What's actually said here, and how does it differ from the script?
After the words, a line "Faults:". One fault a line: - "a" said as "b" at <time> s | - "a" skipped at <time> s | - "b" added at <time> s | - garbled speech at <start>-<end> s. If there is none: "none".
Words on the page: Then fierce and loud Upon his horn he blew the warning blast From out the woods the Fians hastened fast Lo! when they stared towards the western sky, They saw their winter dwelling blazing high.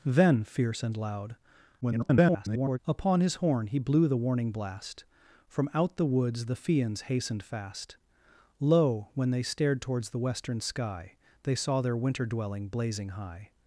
Then fierce and loud [garbled] Upon his horn he blew the warning blast From out the woods the Fians hastened fast Lo! when they stared towards the western sky, They saw their winter dwelling blazing high.
Faults:
- garbled speech at 1.8-2.8 s